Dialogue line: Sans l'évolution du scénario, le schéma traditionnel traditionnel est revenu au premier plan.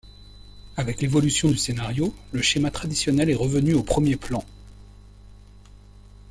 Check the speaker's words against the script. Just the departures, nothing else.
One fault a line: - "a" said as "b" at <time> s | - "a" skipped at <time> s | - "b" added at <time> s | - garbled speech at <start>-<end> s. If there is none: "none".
- "Sans" said as "Avec" at 0.8 s
- "traditionnel" skipped at 3.3 s